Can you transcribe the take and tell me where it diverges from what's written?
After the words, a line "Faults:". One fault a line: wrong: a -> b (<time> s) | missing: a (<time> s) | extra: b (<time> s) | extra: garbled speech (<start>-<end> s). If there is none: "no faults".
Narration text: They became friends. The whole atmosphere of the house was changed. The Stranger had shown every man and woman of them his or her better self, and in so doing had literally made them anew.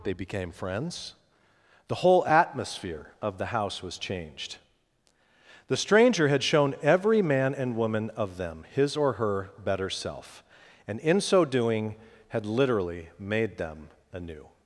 They became friends. The whole atmosphere of the house was changed. The Stranger had shown every man and woman of them his or her better self, and in so doing had literally made them anew.
Faults:
no faults